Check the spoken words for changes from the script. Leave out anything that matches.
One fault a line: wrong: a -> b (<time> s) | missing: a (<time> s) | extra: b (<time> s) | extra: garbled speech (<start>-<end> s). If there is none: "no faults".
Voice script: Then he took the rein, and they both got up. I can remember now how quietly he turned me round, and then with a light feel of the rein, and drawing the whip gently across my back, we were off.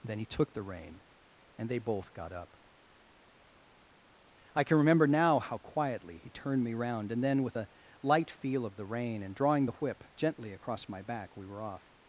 no faults